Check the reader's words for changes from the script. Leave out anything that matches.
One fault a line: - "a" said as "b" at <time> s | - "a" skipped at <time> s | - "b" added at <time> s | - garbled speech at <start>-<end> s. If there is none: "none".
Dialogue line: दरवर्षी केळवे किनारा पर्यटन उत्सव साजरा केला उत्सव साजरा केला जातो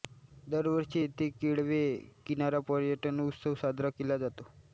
- "येथे" added at 1.0 s
- "उत्सव साजरा केला" skipped at 4.2 s